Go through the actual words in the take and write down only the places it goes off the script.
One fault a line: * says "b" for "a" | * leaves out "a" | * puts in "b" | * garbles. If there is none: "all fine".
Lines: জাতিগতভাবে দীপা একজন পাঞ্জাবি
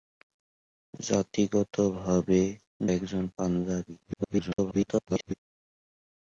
* leaves out "দীপা"
* garbles